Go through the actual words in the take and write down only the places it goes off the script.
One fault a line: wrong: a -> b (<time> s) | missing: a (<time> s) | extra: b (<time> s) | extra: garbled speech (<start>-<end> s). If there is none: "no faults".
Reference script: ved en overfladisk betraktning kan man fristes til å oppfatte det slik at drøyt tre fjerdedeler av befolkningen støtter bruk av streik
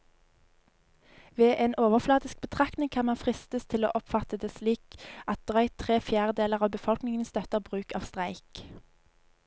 no faults